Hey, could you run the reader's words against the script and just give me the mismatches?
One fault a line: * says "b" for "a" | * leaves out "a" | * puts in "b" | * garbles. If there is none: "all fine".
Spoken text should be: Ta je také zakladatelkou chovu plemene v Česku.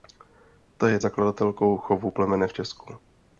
* leaves out "také"